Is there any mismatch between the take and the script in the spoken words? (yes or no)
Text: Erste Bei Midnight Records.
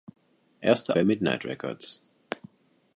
no